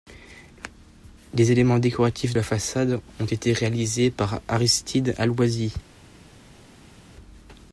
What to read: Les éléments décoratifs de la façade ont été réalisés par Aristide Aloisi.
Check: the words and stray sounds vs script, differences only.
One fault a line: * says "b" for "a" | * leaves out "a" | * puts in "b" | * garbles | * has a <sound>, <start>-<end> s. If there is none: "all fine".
* leaves out "de"